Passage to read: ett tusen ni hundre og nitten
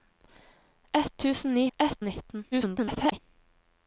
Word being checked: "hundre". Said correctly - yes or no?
no